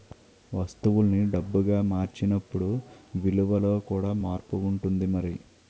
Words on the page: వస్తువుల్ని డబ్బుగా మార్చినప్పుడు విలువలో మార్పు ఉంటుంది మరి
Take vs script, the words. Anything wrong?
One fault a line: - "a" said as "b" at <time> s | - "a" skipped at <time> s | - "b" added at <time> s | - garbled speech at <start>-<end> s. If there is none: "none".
- "కూడా" added at 3.9 s